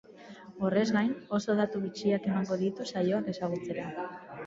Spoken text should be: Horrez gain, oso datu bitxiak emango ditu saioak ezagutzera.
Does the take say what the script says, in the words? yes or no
yes